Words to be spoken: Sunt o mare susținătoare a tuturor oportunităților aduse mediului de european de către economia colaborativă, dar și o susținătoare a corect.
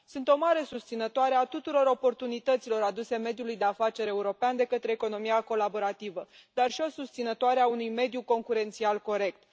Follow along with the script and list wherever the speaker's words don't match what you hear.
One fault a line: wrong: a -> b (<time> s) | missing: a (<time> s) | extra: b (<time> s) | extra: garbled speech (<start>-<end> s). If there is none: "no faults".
extra: afaceri (3.6 s)
extra: unui mediu concurențial (7.7 s)